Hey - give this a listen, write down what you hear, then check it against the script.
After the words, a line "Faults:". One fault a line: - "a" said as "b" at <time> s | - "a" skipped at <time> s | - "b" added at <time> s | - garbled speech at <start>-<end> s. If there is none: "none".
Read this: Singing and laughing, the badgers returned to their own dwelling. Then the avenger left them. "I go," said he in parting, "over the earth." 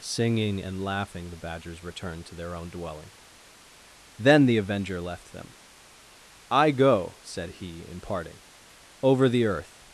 Singing and laughing, the badgers returned to their own dwelling. Then the avenger left them. "I go," said he in parting, "over the earth."
Faults:
none